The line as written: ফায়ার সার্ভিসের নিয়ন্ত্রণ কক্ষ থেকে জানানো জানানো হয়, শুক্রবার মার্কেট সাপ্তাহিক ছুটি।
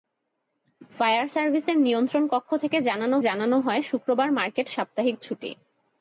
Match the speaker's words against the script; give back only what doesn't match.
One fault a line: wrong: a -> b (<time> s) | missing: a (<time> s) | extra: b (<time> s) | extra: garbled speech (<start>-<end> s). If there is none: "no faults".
no faults